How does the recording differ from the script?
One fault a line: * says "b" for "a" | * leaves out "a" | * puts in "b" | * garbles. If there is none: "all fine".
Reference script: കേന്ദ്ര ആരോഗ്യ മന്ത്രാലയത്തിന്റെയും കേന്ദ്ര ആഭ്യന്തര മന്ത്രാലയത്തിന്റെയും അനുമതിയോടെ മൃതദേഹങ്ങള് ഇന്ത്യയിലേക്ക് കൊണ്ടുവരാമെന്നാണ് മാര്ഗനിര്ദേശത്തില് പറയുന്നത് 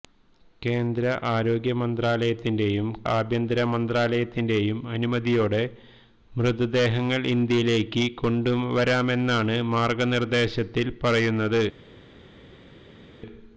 * leaves out "കേന്ദ്ര"